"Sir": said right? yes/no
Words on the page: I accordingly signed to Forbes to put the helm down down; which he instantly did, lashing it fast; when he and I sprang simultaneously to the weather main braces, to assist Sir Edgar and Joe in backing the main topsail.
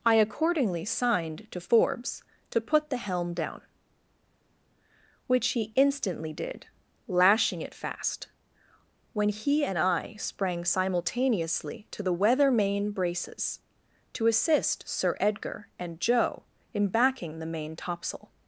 yes